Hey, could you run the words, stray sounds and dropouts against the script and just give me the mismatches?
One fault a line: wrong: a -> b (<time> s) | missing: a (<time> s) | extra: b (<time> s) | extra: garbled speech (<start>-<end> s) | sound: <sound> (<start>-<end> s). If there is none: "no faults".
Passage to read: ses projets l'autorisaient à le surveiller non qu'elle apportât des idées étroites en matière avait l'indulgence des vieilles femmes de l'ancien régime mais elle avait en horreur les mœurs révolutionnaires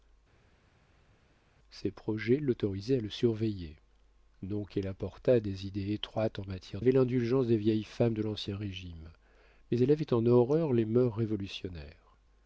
no faults